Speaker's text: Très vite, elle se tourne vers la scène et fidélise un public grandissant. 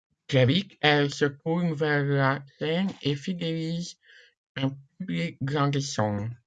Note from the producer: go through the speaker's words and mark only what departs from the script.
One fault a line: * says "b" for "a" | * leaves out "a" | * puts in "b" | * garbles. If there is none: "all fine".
all fine